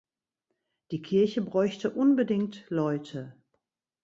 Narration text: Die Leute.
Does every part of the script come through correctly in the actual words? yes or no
no